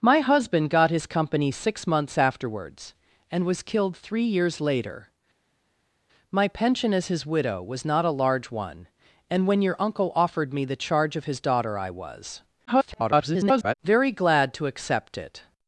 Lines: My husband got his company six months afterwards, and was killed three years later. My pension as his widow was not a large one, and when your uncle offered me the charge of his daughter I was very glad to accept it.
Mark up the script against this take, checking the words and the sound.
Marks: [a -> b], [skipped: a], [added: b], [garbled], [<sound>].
My husband got his company six months afterwards, and was killed three years later. My pension as his widow was not a large one, and when your uncle offered me the charge of his daughter I was [garbled] very glad to accept it.